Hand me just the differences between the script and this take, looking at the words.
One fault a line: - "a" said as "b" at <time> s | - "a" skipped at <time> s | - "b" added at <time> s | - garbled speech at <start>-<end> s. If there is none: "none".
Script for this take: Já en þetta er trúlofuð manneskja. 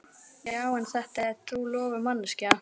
none